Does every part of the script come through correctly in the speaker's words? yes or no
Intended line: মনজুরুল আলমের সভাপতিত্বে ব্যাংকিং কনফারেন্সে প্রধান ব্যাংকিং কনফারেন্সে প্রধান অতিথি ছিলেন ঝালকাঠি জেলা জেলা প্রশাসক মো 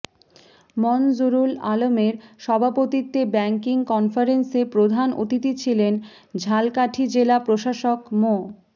no